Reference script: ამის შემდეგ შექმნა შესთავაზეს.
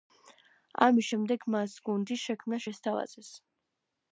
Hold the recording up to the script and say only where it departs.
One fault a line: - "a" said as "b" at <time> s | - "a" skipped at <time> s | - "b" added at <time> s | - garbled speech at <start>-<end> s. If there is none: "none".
- "მას გუნდის" added at 1.6 s